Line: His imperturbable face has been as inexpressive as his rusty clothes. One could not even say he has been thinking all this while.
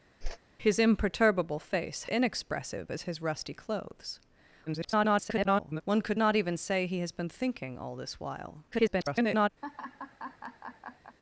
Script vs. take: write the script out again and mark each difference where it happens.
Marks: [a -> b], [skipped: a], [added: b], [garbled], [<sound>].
[whoosh] His imperturbable face [skipped: has been as] inexpressive as his rusty clothes. [garbled] One could not even say he has been thinking all this while. [garbled] [laugh]